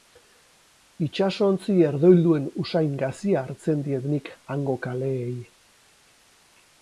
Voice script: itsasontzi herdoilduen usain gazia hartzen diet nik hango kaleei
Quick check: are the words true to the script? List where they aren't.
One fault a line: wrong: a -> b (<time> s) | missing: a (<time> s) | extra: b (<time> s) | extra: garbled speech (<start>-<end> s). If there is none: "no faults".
no faults